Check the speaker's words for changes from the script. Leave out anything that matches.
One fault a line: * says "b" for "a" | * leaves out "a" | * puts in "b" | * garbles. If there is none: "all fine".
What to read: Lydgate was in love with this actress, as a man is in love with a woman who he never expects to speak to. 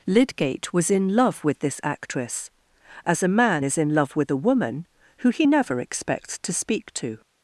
all fine